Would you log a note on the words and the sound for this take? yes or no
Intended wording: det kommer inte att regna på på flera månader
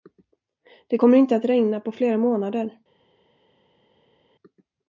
yes